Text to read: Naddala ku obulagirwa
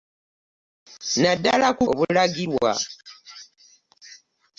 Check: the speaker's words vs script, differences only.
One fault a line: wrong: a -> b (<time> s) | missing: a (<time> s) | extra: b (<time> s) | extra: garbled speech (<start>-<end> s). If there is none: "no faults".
no faults